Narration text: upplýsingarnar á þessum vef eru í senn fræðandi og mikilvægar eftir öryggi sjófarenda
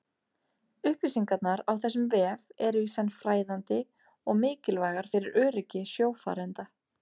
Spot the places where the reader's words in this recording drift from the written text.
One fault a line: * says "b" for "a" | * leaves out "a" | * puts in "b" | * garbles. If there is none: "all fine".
* says "fyrir" for "eftir"